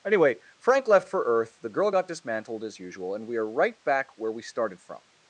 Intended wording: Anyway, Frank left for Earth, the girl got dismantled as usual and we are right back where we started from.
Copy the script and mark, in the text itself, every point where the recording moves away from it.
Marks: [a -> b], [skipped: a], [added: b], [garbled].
Anyway, Frank left for Earth, the girl got dismantled as usual and we are right back where we started from.